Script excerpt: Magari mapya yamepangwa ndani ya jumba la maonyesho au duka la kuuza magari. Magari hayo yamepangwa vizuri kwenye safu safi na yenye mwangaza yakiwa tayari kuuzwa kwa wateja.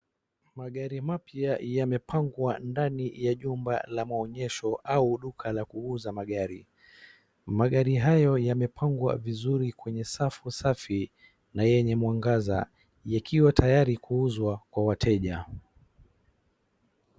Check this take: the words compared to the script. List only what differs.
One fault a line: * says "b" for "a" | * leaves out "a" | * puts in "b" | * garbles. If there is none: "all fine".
all fine